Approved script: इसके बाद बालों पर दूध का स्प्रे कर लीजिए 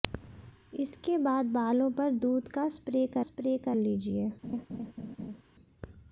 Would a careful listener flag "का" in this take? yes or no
no